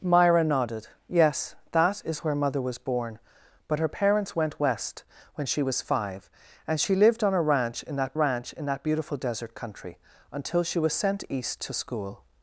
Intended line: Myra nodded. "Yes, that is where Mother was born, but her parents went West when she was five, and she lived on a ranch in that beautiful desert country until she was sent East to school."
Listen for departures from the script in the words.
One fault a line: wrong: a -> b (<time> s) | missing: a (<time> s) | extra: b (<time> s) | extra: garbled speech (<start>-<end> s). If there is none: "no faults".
extra: ranch in that (8.1 s)